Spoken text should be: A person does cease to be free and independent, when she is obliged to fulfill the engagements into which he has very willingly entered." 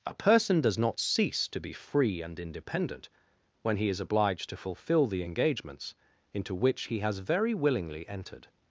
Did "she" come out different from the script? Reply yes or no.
yes